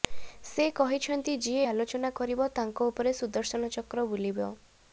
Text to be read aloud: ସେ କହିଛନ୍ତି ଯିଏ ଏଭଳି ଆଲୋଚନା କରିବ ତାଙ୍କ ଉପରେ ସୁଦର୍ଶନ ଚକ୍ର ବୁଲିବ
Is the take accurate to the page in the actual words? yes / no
no